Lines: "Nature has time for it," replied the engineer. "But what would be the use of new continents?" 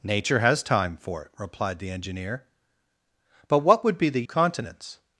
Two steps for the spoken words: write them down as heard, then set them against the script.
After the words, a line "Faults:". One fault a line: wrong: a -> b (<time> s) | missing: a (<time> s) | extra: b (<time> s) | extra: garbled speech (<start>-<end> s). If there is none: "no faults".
"Nature has time for it," replied the engineer. "But what would be the continents?"
Faults:
missing: use of new (4.2 s)